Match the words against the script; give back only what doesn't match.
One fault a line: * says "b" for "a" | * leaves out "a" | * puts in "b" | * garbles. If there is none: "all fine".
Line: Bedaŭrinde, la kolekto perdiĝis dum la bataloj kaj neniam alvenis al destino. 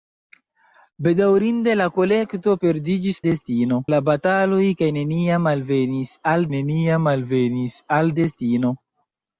* says "destino" for "dum"
* puts in "neniam alvenis al"